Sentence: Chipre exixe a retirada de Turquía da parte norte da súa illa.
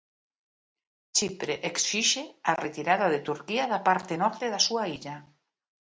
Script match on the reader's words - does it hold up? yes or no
yes